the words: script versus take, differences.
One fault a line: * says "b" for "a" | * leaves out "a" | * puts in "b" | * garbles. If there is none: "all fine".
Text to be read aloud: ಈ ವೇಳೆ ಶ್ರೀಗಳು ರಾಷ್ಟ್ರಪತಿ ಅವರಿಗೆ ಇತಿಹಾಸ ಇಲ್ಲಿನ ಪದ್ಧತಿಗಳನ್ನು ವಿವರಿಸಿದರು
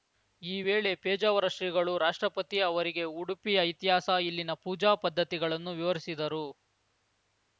* puts in "ಪೇಜಾವರ"
* puts in "ಉಡುಪಿಯ"
* puts in "ಪೂಜಾ"